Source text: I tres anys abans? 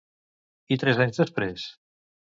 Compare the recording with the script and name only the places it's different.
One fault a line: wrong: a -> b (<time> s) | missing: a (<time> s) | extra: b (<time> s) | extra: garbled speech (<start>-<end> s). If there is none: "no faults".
wrong: abans -> després (1.3 s)